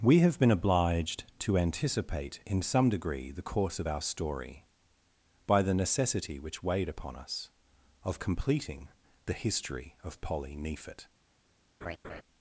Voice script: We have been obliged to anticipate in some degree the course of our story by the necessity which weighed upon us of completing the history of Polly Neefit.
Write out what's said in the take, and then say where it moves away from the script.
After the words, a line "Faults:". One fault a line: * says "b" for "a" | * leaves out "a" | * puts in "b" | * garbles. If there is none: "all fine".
We have been obliged to anticipate in some degree the course of our story by the necessity which weighed upon us of completing the history of Polly Neefit.
Faults:
all fine